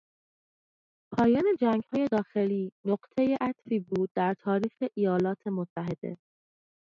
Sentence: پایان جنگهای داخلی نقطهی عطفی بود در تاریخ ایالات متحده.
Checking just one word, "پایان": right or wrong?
right